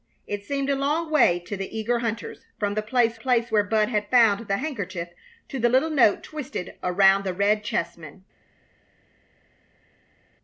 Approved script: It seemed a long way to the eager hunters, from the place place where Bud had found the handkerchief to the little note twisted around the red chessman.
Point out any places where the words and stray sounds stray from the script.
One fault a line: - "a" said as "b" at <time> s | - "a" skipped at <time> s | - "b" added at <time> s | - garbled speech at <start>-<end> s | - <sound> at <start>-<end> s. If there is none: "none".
none